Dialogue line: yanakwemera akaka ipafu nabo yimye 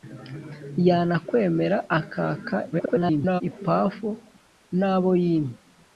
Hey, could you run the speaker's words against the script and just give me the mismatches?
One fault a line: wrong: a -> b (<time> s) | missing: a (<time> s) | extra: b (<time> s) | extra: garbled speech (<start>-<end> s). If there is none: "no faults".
extra: garbled speech (2.7-3.4 s)